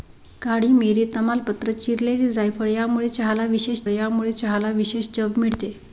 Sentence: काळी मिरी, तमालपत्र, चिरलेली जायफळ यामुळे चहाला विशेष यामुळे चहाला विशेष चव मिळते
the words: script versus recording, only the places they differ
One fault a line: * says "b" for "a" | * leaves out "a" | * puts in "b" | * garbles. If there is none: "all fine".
all fine